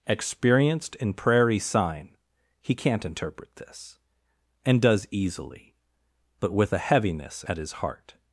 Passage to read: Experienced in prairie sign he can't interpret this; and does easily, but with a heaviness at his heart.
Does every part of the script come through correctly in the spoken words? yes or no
yes